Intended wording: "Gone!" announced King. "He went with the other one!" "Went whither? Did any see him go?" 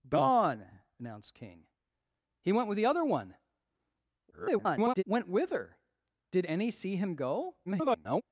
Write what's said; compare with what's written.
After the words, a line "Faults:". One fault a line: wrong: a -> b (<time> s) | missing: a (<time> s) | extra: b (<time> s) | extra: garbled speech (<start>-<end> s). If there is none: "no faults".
"Gone!" announced King. "He went with the other one!" [garbled] "Went whither? Did any see him go?" [garbled]
Faults:
extra: garbled speech (4.3-5.0 s)
extra: garbled speech (7.7-8.2 s)